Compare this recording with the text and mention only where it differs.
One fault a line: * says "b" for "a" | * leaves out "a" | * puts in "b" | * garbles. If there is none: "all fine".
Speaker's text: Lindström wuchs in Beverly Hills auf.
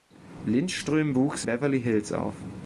* leaves out "in"